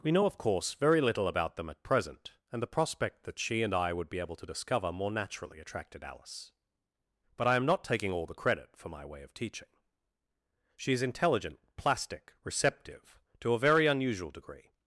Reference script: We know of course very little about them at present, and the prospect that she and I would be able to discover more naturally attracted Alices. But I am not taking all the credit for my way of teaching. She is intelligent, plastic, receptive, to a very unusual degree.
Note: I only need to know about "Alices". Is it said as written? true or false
false